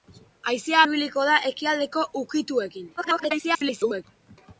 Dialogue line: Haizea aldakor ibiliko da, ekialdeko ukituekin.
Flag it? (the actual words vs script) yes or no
yes